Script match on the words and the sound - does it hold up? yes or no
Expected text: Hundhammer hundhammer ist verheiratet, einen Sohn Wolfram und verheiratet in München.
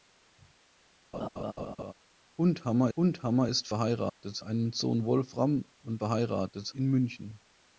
no